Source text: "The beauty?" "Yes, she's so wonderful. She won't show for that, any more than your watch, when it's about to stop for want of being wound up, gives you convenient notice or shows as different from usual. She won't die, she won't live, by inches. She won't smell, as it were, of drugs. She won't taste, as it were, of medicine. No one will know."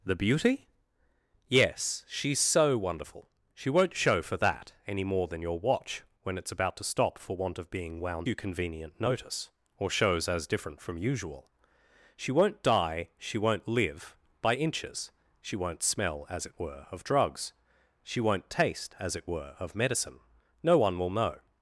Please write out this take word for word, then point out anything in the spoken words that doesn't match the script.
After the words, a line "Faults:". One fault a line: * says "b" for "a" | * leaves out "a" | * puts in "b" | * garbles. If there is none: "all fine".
"The beauty?" "Yes, she's so wonderful. She won't show for that, any more than your watch, when it's about to stop for want of being wound you convenient notice or shows as different from usual. She won't die, she won't live, by inches. She won't smell, as it were, of drugs. She won't taste, as it were, of medicine. No one will know."
Faults:
* leaves out "up gives"